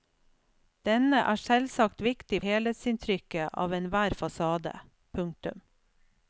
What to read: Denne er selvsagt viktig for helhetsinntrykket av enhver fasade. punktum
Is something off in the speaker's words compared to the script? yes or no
yes